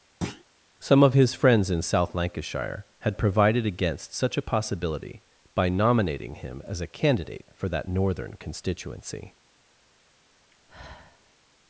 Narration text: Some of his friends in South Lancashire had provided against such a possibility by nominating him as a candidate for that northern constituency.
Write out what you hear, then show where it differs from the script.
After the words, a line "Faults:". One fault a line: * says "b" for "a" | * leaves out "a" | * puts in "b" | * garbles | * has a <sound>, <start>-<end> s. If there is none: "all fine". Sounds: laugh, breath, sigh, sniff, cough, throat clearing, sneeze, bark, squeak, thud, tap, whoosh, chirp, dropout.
Some of his friends in South Lancashire had provided against such a possibility by nominating him as a candidate for that northern constituency.
Faults:
* has a thud, 0.2-0.4 s
* has a sigh, 10.5-11.3 s